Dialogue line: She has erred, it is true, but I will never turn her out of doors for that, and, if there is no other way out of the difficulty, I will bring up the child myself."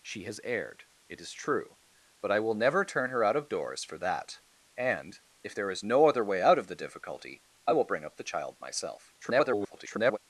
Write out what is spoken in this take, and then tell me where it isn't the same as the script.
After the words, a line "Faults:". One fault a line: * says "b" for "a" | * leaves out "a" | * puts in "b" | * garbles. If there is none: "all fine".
She has erred, it is true, but I will never turn her out of doors for that, and, if there is no other way out of the difficulty, I will bring up the child myself." [garbled]
Faults:
* garbles